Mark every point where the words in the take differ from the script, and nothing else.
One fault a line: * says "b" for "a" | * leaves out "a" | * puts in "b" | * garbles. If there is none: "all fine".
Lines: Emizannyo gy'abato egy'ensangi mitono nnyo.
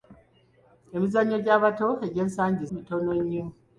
all fine